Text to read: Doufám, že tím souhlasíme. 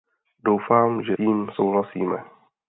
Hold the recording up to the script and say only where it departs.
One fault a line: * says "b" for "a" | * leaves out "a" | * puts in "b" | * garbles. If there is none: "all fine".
all fine